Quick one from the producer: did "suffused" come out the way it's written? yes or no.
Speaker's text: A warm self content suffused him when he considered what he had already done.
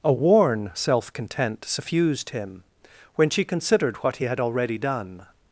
yes